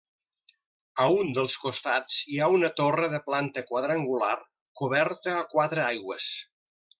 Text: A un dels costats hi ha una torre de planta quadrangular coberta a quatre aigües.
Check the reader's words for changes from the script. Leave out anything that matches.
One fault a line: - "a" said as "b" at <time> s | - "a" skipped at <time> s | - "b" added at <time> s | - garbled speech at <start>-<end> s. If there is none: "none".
none